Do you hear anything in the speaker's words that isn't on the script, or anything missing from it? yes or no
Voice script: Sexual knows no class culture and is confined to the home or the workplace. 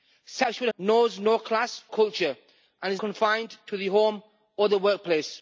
no